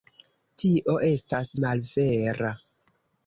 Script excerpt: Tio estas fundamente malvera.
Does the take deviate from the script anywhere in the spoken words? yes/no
yes